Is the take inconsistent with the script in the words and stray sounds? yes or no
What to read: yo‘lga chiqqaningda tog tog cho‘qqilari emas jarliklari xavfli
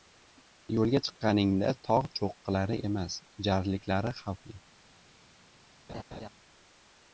yes